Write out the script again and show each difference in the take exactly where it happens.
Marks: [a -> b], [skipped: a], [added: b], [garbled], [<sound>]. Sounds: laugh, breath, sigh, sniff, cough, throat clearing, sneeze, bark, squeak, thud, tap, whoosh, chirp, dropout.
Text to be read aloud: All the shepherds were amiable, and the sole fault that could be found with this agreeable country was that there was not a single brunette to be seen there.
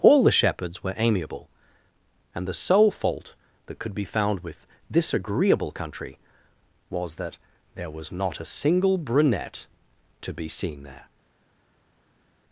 All the shepherds were amiable, and the sole fault that could be found with this agreeable country was that there was not a single brunette to be seen there.